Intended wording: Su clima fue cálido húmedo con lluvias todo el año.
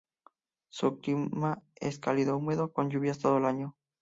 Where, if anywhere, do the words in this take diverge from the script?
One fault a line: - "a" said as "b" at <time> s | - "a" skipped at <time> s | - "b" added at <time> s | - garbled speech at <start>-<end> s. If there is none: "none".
- "fue" said as "es" at 1.7 s